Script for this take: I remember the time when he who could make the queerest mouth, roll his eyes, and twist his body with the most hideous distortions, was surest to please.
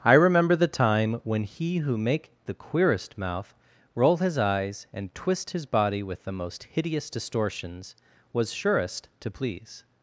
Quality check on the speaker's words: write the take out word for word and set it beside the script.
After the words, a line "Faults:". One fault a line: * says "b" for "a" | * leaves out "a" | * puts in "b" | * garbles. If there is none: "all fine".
I remember the time when he who make the queerest mouth, roll his eyes, and twist his body with the most hideous distortions, was surest to please.
Faults:
* leaves out "could"